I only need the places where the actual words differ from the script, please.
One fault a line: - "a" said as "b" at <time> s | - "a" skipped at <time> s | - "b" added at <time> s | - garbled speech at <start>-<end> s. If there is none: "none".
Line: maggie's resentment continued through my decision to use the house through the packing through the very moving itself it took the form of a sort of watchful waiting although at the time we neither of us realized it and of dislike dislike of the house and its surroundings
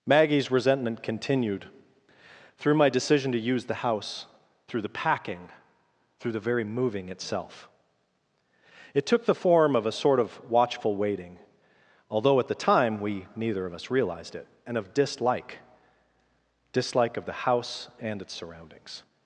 none